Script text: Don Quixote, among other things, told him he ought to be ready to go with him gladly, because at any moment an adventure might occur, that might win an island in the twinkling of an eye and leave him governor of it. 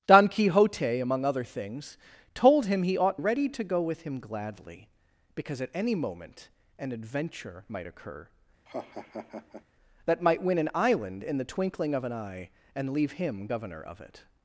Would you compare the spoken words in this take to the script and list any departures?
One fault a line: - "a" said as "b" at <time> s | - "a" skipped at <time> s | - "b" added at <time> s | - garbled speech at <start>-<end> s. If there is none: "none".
- "to be" skipped at 3.2 s